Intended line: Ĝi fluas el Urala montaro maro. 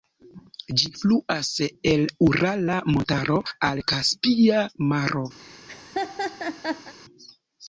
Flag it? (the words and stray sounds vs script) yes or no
yes